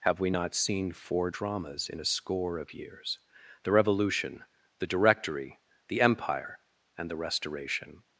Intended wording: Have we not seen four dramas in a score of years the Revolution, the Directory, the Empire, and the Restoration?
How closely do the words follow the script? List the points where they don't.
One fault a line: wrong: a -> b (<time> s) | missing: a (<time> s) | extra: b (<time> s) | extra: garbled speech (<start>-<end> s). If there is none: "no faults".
no faults